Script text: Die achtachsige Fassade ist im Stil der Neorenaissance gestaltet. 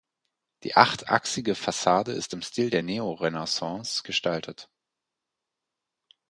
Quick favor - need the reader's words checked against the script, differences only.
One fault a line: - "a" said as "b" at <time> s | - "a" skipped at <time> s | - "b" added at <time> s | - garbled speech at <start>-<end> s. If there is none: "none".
none